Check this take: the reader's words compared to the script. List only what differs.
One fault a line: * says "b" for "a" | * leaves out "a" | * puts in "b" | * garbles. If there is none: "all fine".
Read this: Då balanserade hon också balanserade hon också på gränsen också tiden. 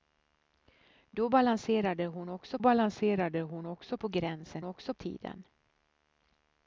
all fine